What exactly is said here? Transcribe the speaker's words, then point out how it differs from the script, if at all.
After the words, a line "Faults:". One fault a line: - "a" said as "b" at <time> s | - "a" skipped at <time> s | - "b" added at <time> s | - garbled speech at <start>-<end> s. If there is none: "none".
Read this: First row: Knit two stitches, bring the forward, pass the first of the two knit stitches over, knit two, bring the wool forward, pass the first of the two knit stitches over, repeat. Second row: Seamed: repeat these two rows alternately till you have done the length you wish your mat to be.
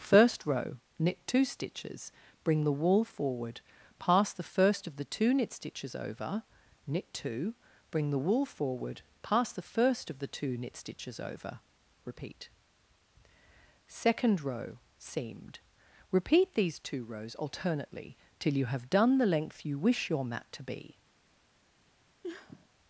First row: Knit two stitches, bring the wool forward, pass the first of the two knit stitches over, knit two, bring the wool forward, pass the first of the two knit stitches over, repeat. Second row: Seamed: repeat these two rows alternately till you have done the length you wish your mat to be.
Faults:
- "wool" added at 2.7 s